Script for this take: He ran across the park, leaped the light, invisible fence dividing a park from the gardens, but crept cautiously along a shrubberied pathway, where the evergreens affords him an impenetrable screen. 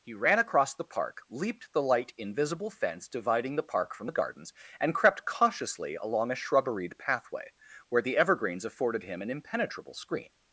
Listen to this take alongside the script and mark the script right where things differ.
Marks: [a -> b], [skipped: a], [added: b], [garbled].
He ran across the park, leaped the light, invisible fence dividing [a -> the] park from the gardens, [but -> and] crept cautiously along a shrubberied pathway, where the evergreens [affords -> afforded] him an impenetrable screen.